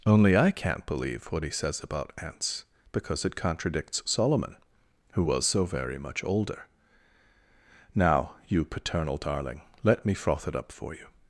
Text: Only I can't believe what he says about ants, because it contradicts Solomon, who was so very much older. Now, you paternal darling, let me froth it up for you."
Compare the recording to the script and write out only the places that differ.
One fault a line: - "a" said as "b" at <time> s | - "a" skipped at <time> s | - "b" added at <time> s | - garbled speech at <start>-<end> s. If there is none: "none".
none